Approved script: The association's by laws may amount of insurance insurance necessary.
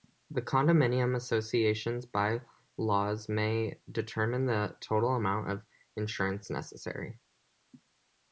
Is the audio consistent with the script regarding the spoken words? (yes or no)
no